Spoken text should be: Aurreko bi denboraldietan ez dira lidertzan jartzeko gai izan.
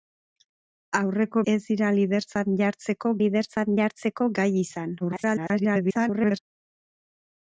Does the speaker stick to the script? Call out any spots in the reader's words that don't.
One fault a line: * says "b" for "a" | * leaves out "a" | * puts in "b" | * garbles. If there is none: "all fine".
* says "ez dira lidertzan jartzeko" for "bi denboraldietan ez dira"
* garbles